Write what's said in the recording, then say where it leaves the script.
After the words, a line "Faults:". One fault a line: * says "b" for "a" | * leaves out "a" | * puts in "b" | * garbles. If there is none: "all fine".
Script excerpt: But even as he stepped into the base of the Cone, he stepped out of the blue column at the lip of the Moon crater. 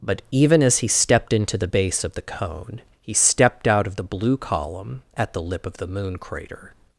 But even as he stepped into the base of the Cone, he stepped out of the blue column at the lip of the Moon crater.
Faults:
all fine